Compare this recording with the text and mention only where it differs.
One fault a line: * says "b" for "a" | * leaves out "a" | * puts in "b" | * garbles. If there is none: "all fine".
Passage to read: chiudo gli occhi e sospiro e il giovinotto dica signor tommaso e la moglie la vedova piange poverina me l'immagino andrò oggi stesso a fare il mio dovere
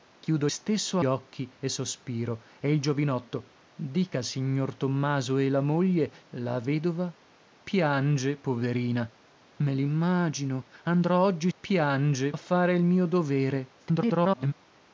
* says "stesso" for "gli"
* says "piange" for "stesso"
* garbles